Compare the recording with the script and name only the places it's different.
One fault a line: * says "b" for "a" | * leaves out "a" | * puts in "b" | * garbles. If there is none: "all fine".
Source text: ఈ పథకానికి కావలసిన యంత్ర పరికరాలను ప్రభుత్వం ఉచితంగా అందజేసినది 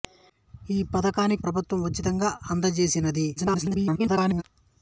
* leaves out "కావలసిన యంత్ర పరికరాలను"
* garbles